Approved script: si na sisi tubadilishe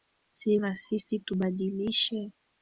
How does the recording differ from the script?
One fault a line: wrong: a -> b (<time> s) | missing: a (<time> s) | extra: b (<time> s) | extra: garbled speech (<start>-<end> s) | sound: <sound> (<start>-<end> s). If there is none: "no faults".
no faults